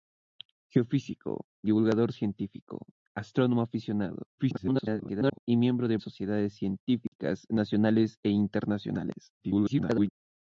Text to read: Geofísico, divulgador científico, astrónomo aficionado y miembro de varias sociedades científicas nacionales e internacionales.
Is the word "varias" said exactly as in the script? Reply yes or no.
no